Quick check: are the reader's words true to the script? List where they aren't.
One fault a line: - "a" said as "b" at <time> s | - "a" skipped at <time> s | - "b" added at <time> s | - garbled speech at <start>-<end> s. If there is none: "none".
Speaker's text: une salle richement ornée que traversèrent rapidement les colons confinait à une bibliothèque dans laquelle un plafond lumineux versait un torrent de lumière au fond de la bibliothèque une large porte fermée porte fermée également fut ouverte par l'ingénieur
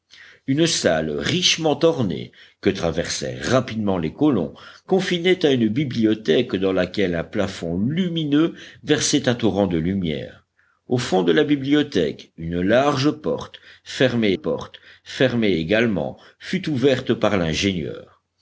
none